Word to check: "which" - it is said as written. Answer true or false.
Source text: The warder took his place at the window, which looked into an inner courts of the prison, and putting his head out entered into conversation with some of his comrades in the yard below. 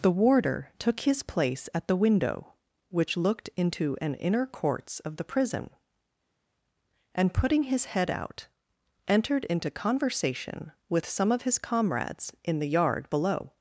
true